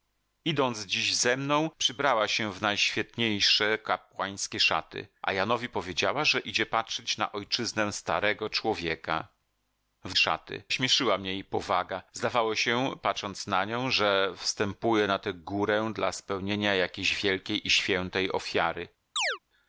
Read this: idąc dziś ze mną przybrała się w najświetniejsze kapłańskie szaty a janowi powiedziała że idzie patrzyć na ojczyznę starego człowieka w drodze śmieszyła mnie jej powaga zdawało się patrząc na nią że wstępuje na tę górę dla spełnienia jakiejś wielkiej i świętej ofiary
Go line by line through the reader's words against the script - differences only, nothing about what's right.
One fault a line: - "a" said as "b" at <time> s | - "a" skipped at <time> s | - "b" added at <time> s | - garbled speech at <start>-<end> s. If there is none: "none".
- "drodze" said as "szaty" at 10.1 s